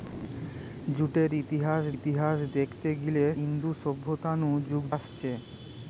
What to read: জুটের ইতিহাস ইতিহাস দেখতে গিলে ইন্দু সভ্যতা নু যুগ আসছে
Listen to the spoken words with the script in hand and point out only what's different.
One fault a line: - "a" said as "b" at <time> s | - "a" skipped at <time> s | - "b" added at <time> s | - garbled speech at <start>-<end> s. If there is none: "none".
none